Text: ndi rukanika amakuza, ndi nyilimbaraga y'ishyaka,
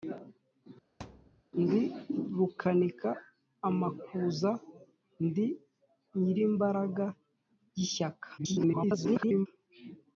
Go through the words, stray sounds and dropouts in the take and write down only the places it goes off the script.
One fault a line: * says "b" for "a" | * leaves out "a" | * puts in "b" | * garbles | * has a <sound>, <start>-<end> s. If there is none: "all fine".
* has a thud, 1.0-1.4 s
* garbles